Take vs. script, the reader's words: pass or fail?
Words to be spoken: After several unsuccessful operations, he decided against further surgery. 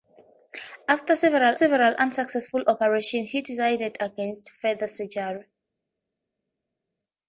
fail